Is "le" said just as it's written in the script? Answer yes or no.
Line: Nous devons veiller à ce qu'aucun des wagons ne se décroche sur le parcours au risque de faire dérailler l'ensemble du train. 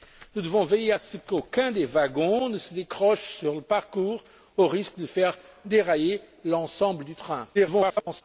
yes